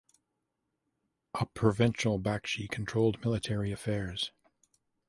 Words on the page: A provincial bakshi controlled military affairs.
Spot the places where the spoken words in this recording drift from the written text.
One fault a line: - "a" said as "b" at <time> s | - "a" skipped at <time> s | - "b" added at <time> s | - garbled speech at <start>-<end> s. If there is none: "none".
none